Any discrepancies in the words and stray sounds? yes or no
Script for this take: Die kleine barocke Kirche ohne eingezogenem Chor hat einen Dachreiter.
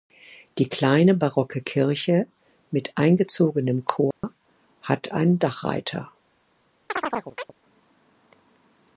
yes